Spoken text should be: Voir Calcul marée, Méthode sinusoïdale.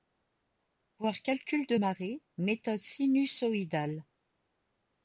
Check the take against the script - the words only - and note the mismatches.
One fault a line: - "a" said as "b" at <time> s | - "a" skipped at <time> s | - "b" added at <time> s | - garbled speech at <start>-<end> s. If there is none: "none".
- "de" added at 1.7 s